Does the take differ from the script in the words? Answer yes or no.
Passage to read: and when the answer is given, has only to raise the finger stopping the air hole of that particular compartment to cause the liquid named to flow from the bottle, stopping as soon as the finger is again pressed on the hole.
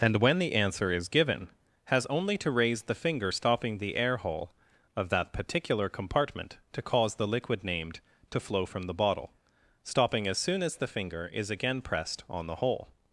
no